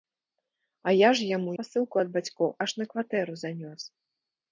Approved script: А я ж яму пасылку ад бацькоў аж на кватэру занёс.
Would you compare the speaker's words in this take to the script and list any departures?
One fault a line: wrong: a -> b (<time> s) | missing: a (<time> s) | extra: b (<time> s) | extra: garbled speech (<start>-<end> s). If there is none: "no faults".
no faults